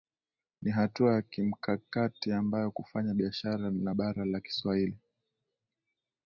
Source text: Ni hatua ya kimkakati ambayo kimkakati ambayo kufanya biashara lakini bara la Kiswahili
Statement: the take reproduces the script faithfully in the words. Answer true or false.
false